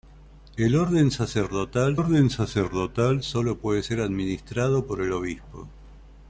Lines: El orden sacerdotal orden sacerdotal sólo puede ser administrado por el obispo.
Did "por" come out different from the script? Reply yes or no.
no